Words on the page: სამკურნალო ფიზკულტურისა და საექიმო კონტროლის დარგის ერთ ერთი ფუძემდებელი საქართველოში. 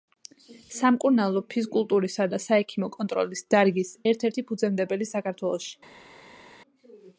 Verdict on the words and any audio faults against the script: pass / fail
pass